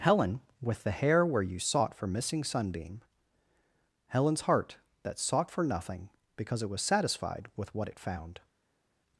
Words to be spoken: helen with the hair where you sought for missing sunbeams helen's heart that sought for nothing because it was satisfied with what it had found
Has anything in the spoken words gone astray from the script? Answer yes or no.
yes